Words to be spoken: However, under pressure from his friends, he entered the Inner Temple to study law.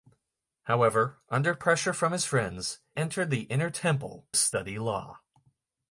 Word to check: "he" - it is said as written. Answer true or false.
false